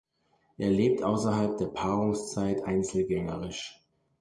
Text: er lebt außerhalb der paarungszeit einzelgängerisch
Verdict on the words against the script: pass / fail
pass